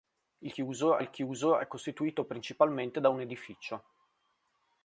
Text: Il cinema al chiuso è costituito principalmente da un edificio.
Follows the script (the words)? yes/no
no